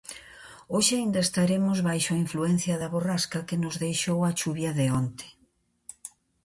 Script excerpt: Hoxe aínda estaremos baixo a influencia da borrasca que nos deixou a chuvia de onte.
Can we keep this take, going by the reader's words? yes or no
yes